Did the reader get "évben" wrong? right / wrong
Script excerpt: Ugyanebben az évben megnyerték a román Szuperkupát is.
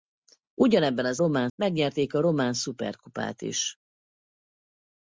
wrong